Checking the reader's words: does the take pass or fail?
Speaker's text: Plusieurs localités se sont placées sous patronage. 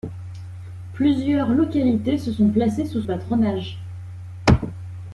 pass